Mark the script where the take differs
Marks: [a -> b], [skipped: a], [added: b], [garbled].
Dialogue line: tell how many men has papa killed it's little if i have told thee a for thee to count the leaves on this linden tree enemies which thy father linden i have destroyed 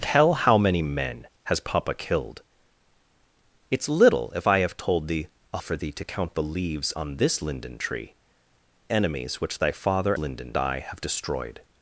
tell how many men has papa killed it's little if i have told thee a for thee to count the leaves on this linden tree enemies which thy father linden i have destroyed